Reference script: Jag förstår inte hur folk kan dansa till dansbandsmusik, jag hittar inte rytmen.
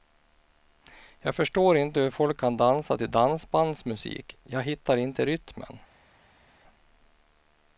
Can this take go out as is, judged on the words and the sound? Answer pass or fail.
pass